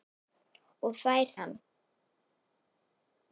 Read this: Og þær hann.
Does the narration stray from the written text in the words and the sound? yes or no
no